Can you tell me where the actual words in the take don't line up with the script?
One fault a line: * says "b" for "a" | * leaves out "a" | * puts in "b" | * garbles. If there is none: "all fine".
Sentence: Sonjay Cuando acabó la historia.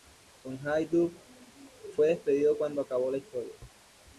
* puts in "Dutt fue despedido"